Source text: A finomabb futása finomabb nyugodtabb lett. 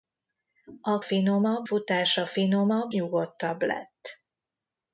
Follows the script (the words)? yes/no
yes